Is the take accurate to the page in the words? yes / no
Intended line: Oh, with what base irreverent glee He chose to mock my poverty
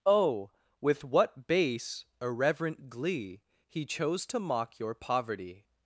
no